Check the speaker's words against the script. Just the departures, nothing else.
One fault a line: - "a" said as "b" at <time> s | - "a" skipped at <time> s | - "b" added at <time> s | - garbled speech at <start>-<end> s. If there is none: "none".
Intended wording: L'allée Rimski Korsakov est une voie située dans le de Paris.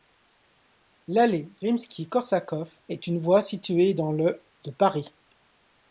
none